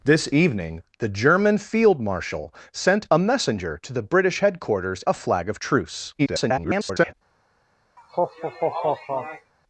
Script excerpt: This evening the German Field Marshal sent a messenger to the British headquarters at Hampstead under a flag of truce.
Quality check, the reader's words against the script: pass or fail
fail